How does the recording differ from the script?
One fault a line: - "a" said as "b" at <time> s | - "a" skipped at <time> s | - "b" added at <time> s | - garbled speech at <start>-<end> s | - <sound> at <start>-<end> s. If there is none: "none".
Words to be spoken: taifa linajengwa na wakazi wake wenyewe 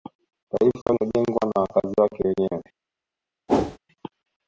- dropout at 0.8-0.9 s
- whoosh at 3.5-3.8 s